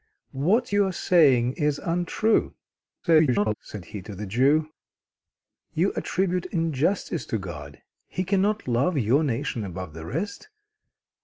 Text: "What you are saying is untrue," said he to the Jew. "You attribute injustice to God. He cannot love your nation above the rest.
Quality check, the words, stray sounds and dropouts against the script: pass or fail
fail